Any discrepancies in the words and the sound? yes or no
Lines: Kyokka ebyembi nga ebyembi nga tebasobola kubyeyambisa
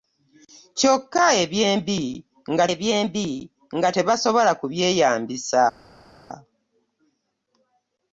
no